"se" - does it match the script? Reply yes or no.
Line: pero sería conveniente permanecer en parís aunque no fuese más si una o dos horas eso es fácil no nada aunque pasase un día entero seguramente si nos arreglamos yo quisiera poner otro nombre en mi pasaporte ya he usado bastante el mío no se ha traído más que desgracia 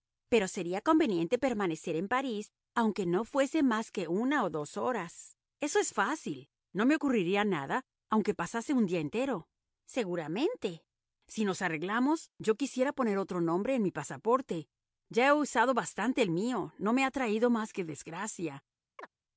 no